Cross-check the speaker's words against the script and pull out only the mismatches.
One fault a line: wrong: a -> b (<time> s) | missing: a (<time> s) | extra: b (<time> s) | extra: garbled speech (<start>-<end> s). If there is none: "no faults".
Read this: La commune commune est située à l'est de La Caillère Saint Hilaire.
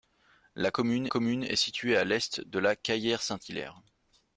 no faults